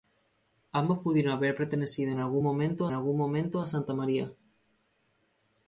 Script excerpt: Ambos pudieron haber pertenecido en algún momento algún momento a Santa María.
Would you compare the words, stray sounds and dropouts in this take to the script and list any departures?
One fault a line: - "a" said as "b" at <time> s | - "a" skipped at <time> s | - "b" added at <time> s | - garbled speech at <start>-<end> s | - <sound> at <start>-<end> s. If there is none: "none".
none